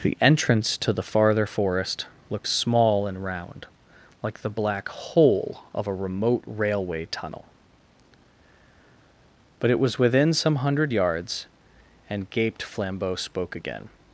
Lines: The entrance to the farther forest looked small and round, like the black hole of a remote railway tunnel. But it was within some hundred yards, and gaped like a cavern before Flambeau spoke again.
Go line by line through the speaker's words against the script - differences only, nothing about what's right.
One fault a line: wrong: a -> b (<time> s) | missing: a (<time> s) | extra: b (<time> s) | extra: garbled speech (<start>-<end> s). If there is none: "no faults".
missing: like a cavern before (12.6 s)